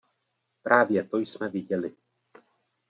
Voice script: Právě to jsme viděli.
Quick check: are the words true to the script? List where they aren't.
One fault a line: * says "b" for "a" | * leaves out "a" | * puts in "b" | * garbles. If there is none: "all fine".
all fine